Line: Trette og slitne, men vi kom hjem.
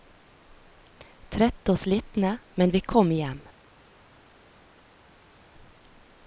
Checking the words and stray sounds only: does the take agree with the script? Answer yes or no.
yes